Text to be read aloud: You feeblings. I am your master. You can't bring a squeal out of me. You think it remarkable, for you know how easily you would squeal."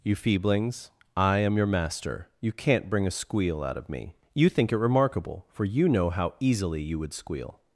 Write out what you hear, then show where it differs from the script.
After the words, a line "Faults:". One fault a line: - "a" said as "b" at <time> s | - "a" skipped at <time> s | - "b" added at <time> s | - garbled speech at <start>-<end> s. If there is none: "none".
You feeblings. I am your master. You can't bring a squeal out of me. You think it remarkable, for you know how easily you would squeal."
Faults:
none